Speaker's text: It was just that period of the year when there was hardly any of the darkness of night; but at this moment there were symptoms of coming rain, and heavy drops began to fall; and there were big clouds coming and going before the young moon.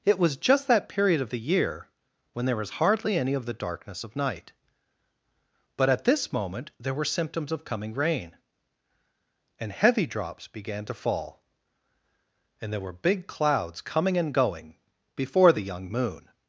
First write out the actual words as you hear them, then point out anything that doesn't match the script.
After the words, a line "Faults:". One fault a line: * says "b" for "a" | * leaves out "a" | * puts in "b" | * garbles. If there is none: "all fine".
It was just that period of the year when there was hardly any of the darkness of night; but at this moment there were symptoms of coming rain, and heavy drops began to fall; and there were big clouds coming and going before the young moon.
Faults:
all fine